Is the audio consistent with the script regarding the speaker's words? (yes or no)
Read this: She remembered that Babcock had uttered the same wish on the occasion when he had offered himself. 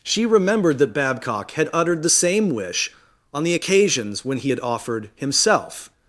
no